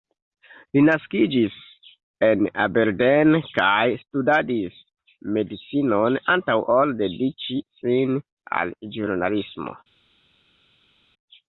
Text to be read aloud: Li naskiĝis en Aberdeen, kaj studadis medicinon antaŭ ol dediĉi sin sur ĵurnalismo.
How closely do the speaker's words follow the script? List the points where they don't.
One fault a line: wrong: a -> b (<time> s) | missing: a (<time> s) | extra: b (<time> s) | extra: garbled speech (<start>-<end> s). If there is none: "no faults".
wrong: sur -> al (8.6 s)